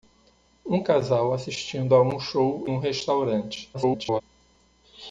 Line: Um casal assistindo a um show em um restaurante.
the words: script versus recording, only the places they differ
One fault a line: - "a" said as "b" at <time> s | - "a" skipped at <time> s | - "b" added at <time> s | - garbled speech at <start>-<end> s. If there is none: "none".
- "em" skipped at 2.7 s
- garbled speech at 3.7-4.2 s